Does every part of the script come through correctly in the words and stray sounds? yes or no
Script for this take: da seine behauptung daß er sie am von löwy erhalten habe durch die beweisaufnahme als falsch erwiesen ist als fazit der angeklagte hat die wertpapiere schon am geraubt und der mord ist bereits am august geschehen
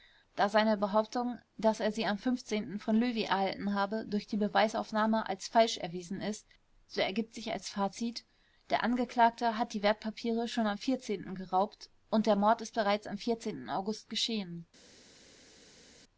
no